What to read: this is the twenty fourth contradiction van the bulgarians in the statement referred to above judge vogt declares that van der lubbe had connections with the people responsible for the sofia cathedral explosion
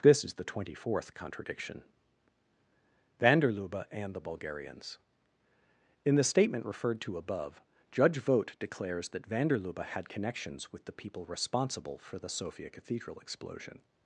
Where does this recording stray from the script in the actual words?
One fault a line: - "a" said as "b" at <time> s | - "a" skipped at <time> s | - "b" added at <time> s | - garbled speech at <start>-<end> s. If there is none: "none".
- "der lubbe and" added at 3.4 s